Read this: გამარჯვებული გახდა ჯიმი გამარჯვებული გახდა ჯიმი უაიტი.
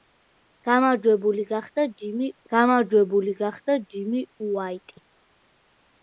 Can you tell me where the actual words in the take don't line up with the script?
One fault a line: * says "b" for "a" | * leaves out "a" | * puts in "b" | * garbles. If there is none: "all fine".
all fine